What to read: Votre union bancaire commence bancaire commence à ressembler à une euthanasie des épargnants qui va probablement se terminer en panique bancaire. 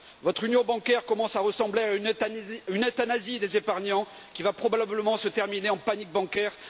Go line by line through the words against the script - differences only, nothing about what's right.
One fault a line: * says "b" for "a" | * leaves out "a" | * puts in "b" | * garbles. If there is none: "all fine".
* leaves out "bancaire commence"